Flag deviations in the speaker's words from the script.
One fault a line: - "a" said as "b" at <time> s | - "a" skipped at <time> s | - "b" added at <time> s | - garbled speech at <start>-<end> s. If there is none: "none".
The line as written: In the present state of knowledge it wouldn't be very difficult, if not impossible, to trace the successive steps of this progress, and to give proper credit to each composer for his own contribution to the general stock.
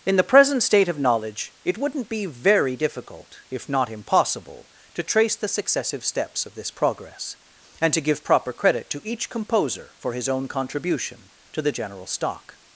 none